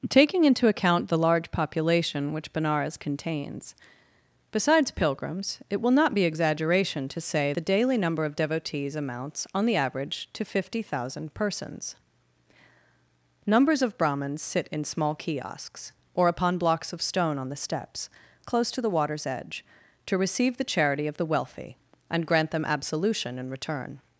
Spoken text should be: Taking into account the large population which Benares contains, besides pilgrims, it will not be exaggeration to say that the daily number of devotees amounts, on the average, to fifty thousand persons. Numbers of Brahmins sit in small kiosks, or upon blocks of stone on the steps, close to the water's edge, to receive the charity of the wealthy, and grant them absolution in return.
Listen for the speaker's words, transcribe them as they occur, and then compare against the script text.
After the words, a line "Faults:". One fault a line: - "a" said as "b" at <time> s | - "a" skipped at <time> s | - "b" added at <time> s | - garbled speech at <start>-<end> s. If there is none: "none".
Taking into account the large population which Benares contains, besides pilgrims, it will not be exaggeration to say the daily number of devotees amounts, on the average, to fifty thousand persons. Numbers of Brahmins sit in small kiosks, or upon blocks of stone on the steps, close to the water's edge, to receive the charity of the wealthy, and grant them absolution in return.
Faults:
- "that" skipped at 7.5 s